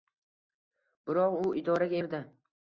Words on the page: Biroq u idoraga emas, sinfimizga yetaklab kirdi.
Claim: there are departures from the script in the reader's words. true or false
true